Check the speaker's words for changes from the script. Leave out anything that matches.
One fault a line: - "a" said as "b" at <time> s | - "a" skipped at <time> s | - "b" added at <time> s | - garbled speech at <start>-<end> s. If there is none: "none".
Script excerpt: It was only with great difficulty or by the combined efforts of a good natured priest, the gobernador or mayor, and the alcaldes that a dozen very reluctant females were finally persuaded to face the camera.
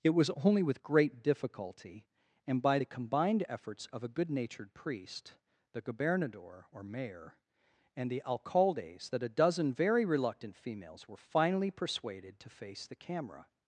- "or" said as "and" at 2.5 s